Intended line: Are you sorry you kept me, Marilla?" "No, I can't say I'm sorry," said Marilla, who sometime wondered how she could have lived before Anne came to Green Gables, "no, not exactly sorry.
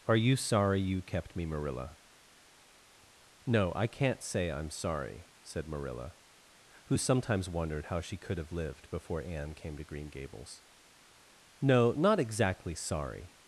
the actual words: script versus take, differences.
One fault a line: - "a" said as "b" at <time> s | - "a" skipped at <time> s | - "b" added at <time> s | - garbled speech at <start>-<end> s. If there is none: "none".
- "sometime" said as "sometimes" at 7.0 s